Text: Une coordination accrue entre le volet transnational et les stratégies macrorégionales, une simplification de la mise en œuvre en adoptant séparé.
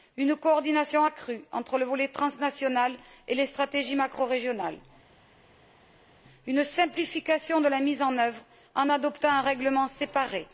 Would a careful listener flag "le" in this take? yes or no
no